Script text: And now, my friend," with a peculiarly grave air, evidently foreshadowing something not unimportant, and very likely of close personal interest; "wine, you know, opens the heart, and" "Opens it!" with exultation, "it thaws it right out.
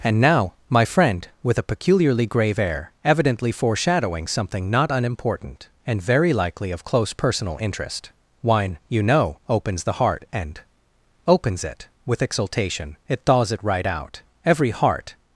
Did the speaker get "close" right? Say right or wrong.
right